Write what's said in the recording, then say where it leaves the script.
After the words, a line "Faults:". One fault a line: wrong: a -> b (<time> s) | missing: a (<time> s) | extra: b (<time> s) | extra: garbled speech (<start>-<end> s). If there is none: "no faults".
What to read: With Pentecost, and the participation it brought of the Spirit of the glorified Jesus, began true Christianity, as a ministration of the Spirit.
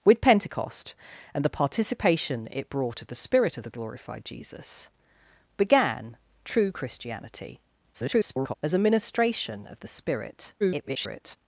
With Pentecost, and the participation it brought of the Spirit of the glorified Jesus, began true Christianity, [garbled] as a ministration of the Spirit. [garbled]
Faults:
extra: garbled speech (7.9-8.5 s)
extra: garbled speech (10.6-11.4 s)